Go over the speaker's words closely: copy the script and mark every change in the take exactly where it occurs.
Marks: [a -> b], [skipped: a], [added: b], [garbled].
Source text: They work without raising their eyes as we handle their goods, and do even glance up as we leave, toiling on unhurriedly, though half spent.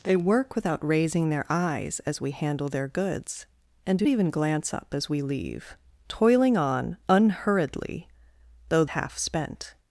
They work without raising their eyes as we handle their goods, and do even glance up as we leave, toiling on unhurriedly, though half spent.